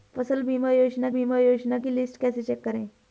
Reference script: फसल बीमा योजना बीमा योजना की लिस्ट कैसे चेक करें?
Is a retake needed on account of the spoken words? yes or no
no